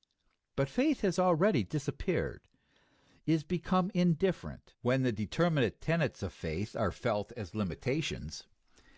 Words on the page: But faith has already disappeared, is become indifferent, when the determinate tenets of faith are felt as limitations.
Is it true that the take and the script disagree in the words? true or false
false